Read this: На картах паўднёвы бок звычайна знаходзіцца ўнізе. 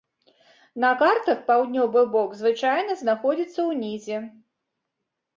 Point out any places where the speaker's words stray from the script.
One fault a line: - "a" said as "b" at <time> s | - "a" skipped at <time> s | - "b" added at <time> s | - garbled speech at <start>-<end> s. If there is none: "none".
none